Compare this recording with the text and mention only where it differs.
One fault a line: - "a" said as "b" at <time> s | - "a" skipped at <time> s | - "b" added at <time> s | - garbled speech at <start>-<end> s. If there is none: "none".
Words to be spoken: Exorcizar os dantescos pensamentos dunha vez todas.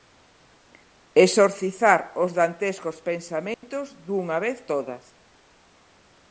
none